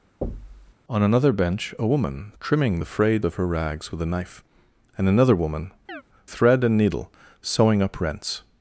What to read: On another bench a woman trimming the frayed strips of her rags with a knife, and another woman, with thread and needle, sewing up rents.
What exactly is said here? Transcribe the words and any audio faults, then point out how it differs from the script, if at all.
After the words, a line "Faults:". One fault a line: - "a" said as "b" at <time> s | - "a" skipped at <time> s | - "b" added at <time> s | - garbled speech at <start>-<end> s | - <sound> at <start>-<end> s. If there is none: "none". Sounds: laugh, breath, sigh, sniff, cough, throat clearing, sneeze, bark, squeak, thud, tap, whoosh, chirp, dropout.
On another bench a woman trimming the frayed of her rags with a knife, and another woman, thread and needle, sewing up rents.
Faults:
- thud at 0.2-0.7 s
- "strips" skipped at 3.2 s
- "with" skipped at 5.7 s
- chirp at 5.9-6.0 s